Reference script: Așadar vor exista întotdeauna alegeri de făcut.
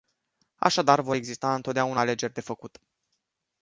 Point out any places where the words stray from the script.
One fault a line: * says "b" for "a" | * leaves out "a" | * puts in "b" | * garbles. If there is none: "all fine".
all fine